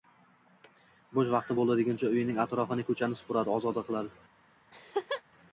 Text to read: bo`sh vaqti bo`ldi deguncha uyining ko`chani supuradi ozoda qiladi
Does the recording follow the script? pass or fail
fail